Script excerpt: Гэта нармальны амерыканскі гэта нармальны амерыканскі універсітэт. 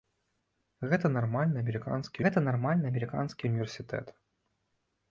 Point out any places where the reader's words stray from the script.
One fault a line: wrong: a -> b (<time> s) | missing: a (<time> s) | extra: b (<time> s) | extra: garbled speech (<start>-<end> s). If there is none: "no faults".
no faults